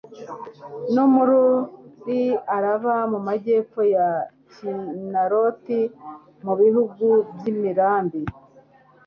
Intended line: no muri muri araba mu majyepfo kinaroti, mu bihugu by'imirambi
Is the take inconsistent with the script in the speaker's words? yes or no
yes